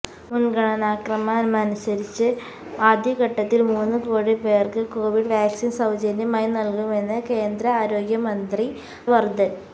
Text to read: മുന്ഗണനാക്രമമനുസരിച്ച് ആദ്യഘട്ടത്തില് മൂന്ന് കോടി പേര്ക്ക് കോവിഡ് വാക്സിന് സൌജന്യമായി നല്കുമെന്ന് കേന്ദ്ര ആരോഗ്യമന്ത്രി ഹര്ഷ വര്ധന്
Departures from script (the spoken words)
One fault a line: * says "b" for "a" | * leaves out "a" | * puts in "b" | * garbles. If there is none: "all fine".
* leaves out "ഹര്ഷ"